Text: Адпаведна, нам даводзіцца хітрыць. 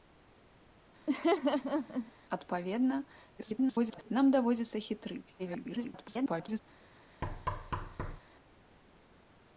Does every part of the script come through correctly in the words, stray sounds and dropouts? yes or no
no